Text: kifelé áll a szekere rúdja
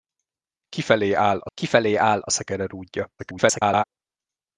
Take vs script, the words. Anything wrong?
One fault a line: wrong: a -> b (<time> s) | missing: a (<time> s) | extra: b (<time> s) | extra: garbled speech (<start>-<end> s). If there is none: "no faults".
extra: kifelé áll a (1.5 s)
extra: garbled speech (3.2-3.8 s)